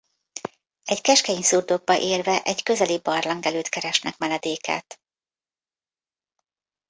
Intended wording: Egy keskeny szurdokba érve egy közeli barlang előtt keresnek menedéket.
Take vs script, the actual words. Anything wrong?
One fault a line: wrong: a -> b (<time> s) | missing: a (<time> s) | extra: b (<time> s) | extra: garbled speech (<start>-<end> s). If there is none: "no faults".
no faults